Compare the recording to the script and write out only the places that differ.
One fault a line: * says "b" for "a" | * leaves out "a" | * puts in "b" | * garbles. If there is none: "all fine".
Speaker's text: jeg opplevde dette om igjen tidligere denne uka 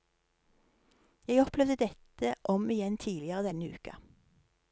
all fine